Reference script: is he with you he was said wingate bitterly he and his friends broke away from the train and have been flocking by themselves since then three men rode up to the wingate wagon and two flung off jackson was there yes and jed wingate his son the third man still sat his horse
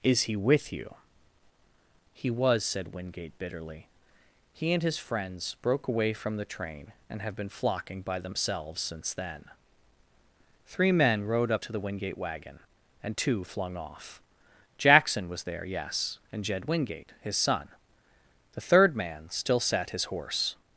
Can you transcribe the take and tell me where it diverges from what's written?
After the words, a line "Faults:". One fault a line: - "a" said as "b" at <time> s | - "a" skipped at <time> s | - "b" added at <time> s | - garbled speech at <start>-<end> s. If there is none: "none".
is he with you he was said wingate bitterly he and his friends broke away from the train and have been flocking by themselves since then three men rode up to the wingate wagon and two flung off jackson was there yes and jed wingate his son the third man still sat his horse
Faults:
none